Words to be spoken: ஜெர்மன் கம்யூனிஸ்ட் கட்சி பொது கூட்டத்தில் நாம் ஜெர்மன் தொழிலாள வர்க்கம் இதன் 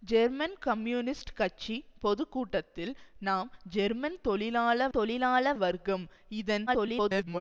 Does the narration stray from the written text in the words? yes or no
yes